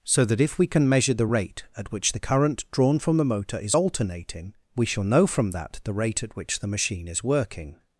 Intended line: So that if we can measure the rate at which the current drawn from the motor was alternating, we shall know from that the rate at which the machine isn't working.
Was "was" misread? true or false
true